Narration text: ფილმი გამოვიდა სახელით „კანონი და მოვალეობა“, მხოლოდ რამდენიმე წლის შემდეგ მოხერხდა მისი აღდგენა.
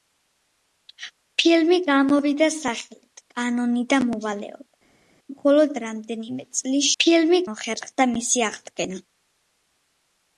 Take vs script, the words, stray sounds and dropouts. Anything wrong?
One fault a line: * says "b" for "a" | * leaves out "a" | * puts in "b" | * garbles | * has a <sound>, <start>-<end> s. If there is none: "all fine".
* says "ფილმი" for "შემდეგ"